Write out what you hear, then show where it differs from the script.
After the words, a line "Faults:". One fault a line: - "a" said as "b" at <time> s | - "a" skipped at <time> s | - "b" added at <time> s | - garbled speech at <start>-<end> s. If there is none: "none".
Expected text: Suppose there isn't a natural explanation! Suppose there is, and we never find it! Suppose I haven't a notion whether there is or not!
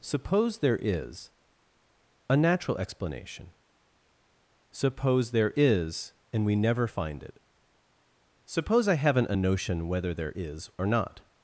Suppose there is a natural explanation! Suppose there is, and we never find it! Suppose I haven't a notion whether there is or not!
Faults:
- "isn't" said as "is" at 0.8 s